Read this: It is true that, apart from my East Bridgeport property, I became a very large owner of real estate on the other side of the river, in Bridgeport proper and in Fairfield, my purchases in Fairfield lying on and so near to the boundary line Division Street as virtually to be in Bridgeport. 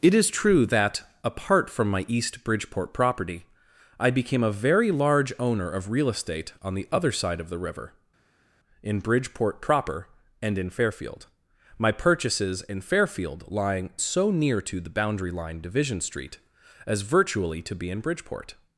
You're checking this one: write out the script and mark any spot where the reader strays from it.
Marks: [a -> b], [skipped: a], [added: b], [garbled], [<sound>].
It is true that, apart from my East Bridgeport property, I became a very large owner of real estate on the other side of the river, in Bridgeport proper and in Fairfield, my purchases in Fairfield lying [skipped: on and] so near to the boundary line Division Street as virtually to be in Bridgeport.